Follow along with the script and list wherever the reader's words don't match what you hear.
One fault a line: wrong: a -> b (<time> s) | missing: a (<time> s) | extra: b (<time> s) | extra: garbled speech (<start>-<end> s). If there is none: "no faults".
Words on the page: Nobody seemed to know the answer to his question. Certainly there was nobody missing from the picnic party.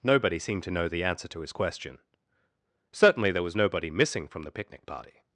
no faults